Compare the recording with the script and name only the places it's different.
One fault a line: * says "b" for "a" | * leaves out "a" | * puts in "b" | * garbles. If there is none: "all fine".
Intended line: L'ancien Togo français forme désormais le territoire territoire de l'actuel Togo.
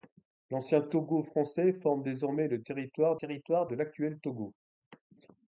all fine